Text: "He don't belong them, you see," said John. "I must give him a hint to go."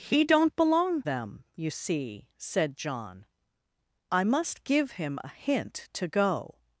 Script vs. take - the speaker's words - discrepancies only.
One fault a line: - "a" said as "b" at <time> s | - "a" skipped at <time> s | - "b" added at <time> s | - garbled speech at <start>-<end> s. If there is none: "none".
none